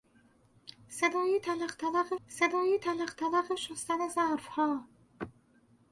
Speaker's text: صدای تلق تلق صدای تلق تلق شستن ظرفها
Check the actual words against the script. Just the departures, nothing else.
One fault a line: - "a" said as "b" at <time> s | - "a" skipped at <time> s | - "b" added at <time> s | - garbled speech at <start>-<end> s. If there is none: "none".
none